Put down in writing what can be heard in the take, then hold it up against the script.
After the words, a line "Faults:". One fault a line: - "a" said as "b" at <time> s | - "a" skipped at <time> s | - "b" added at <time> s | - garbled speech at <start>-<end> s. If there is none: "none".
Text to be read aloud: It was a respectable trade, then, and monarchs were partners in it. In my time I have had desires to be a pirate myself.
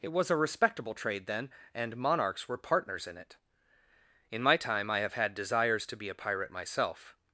It was a respectable trade, then, and monarchs were partners in it. In my time I have had desires to be a pirate myself.
Faults:
none